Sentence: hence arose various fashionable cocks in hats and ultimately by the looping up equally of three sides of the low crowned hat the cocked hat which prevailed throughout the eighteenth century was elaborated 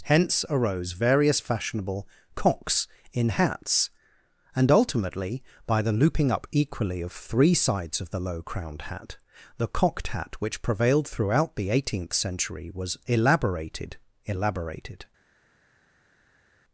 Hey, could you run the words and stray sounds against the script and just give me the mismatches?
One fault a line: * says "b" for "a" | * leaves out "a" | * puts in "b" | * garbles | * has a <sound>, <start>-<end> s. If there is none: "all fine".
* puts in "elaborated"